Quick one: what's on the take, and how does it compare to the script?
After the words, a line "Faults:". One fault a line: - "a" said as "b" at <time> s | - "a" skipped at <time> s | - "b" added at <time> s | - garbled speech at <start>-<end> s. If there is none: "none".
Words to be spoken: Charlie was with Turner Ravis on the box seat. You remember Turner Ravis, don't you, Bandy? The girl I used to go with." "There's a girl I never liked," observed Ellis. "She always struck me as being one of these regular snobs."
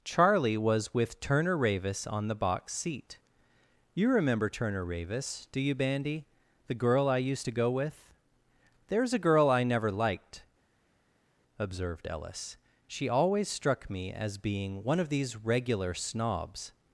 Charlie was with Turner Ravis on the box seat. You remember Turner Ravis, do you, Bandy? The girl I used to go with." "There's a girl I never liked," observed Ellis. "She always struck me as being one of these regular snobs."
Faults:
- "don't" said as "do" at 5.5 s